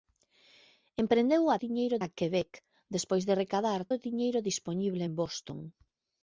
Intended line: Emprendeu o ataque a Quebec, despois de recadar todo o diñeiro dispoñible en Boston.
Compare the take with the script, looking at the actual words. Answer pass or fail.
fail